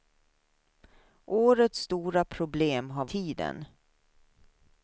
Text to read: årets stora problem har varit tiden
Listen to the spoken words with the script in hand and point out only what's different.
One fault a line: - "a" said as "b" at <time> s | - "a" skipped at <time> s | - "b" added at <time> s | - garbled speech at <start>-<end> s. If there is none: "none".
- "varit" skipped at 3.0 s